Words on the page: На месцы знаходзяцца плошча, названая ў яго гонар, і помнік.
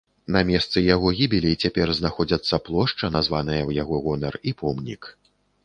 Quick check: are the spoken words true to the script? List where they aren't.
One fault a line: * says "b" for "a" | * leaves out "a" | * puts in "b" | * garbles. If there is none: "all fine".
* puts in "яго гібелі цяпер"